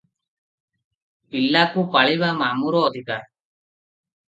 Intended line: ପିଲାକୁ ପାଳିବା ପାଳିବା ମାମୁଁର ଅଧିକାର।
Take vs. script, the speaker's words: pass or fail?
fail